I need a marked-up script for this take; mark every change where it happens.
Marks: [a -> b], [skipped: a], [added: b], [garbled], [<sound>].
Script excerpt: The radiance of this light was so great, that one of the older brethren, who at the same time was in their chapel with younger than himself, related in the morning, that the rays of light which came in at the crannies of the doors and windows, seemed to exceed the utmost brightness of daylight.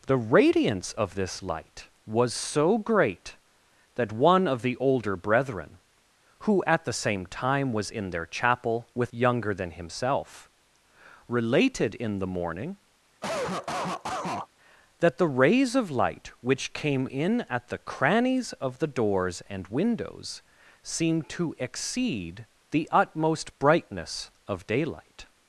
The radiance of this light was so great, that one of the older brethren, who at the same time was in their chapel with younger than himself, related in the morning, [cough] that the rays of light which came in at the crannies of the doors and windows, seemed to exceed the utmost brightness of daylight.